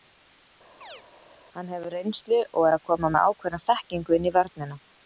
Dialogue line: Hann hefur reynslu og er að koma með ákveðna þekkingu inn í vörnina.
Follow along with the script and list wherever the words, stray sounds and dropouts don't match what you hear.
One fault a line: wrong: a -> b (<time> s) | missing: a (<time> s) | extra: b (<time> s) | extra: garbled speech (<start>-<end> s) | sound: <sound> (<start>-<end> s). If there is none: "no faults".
sound: chirp (0.8-1.0 s)